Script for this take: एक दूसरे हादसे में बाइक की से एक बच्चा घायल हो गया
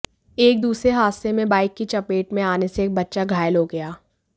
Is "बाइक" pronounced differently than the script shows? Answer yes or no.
no